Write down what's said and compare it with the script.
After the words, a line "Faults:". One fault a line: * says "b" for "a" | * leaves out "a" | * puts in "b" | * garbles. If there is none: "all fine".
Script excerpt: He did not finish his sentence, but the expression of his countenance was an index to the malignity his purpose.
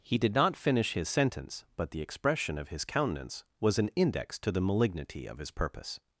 He did not finish his sentence, but the expression of his countenance was an index to the malignity of his purpose.
Faults:
* puts in "of"